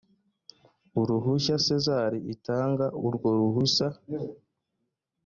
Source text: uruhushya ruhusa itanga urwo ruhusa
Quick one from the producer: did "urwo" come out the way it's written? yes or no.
yes